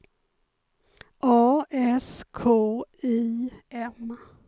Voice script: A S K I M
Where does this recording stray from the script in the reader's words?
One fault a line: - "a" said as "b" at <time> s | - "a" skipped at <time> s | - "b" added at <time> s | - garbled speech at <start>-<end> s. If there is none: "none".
none